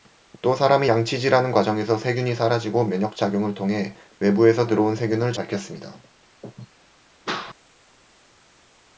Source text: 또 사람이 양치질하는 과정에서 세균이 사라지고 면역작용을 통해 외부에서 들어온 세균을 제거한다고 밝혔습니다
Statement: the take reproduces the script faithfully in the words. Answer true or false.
false